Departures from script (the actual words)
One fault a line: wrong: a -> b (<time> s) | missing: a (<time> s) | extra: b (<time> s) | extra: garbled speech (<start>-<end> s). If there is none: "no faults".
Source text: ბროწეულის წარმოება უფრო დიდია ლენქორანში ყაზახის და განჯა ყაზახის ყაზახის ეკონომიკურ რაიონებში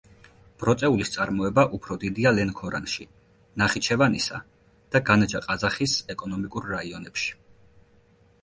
wrong: ყაზახის -> ნახიჩევანისა (3.6 s)
missing: ყაზახის (6.0 s)